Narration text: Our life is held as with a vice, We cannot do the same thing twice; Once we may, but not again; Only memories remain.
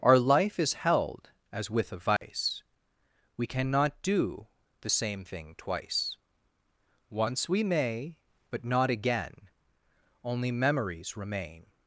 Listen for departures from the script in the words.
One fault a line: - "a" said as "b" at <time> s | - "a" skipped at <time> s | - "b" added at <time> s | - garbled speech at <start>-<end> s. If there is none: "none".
none